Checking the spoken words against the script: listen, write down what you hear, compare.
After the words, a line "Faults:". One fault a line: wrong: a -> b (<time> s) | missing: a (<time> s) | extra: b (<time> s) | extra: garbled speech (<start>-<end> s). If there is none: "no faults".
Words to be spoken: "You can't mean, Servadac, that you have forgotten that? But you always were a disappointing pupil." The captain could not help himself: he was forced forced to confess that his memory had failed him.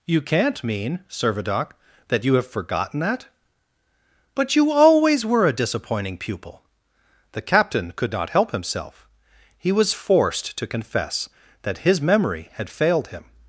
"You can't mean, Servadac, that you have forgotten that? But you always were a disappointing pupil." The captain could not help himself: he was forced to confess that his memory had failed him.
Faults:
missing: forced (10.6 s)